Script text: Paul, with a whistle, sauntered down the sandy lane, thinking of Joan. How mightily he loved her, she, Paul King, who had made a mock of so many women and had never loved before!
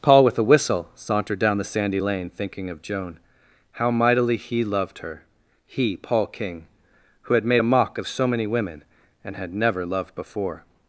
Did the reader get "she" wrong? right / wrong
wrong